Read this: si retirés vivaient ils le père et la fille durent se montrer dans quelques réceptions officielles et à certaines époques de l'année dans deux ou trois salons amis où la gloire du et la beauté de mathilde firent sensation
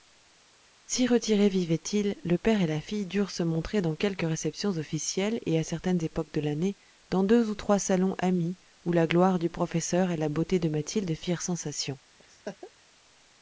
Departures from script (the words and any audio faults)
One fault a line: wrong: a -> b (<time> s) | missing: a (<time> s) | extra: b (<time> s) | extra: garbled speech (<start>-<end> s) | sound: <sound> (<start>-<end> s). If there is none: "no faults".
extra: professeur (9.5 s)
sound: laugh (12.2-12.7 s)